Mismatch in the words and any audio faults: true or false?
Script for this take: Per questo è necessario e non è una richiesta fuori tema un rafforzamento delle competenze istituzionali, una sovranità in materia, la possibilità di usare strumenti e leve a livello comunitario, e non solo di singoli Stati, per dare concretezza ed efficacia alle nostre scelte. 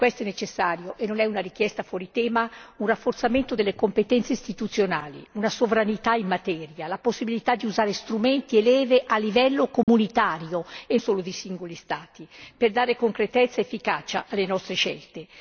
true